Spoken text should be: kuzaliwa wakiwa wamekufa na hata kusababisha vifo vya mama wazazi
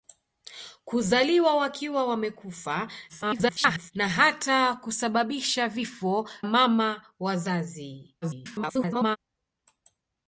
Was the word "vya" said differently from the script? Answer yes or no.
yes